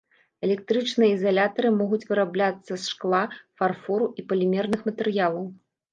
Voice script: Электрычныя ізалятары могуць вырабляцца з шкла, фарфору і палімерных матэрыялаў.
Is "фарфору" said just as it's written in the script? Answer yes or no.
yes